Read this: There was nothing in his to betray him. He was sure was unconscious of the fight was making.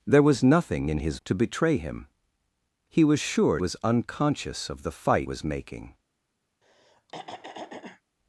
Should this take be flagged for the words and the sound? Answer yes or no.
yes